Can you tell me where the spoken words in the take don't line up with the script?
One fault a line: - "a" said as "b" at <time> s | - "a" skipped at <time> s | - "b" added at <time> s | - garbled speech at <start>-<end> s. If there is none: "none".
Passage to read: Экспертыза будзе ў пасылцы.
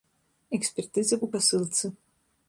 - "будзе" skipped at 1.1 s